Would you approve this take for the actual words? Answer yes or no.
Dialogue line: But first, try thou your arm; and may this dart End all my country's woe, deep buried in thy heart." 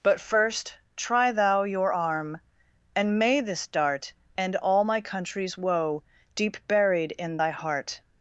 yes